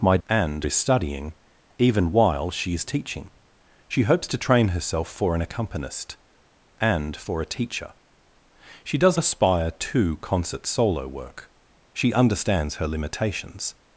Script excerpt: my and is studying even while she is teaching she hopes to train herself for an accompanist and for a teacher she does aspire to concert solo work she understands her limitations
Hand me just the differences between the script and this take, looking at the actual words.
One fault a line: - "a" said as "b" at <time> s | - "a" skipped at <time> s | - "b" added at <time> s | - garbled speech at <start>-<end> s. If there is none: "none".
none